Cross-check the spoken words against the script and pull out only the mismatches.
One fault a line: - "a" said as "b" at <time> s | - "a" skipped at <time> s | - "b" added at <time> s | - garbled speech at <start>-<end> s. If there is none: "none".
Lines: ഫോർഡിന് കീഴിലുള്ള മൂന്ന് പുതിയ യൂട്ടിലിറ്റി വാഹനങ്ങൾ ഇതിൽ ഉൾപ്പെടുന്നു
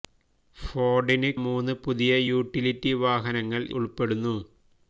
- "കീഴിലുള്ള" skipped at 1.3 s
- "ഇതിൽ" skipped at 3.6 s